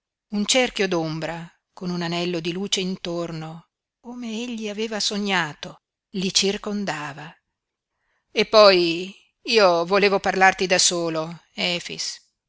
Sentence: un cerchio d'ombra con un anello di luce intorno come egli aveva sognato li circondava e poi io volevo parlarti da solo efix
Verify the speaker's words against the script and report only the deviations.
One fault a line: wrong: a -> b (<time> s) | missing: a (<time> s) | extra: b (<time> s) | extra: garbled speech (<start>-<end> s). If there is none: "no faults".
no faults